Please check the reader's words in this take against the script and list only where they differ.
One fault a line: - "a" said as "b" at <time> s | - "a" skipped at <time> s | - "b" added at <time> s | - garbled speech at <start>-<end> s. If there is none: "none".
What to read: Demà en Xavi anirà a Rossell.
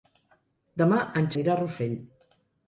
- "Xavi" skipped at 1.3 s